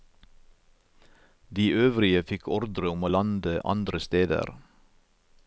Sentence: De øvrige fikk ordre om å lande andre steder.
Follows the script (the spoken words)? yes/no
yes